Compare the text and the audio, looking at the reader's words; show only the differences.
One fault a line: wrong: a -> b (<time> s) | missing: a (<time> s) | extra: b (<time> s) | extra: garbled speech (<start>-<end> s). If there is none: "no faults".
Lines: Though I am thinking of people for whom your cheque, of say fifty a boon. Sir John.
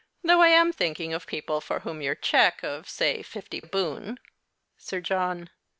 no faults